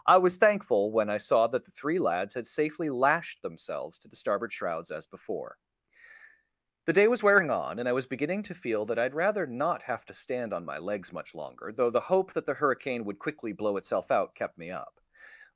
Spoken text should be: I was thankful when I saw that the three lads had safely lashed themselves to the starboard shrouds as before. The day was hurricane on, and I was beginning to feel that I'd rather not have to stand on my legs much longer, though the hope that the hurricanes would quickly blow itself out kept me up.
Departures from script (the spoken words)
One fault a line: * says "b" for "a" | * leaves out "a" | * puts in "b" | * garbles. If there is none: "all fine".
* says "wearing" for "hurricane"
* says "hurricane" for "hurricanes"